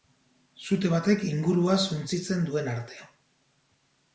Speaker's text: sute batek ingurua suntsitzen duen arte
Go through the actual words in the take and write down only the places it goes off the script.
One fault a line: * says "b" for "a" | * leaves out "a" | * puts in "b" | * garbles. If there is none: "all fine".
all fine